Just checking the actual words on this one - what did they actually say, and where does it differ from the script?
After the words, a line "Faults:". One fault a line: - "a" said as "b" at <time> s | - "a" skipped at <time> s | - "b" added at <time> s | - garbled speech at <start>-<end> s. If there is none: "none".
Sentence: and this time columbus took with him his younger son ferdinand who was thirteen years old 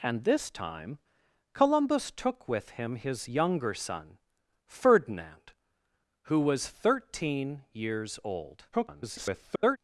and this time columbus took with him his younger son ferdinand who was thirteen years old [garbled]
Faults:
- garbled speech at 8.7-9.8 s